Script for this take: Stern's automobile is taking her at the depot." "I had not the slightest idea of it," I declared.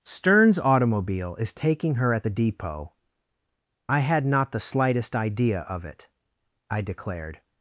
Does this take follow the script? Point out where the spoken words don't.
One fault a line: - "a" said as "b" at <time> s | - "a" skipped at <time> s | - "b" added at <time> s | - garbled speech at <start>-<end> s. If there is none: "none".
none